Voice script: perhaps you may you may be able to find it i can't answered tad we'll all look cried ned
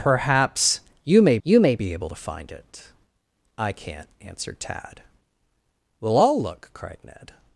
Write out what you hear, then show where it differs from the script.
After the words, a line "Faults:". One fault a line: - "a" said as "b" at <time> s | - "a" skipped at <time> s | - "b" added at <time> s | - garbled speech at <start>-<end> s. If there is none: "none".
perhaps you may you may be able to find it i can't answered tad we'll all look cried ned
Faults:
none